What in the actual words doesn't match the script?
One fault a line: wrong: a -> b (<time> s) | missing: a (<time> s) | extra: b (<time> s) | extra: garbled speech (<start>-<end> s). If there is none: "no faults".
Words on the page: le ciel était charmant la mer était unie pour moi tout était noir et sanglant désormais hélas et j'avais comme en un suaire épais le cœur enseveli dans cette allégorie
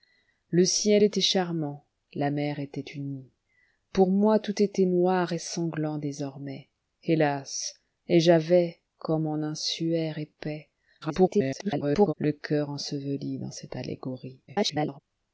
extra: garbled speech (11.0-12.1 s)
extra: garbled speech (14.5-15.0 s)